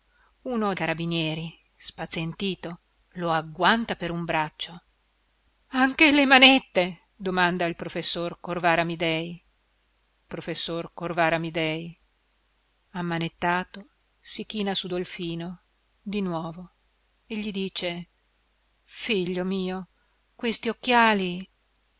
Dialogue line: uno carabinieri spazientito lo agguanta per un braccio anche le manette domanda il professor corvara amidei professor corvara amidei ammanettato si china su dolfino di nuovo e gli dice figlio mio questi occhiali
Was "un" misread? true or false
false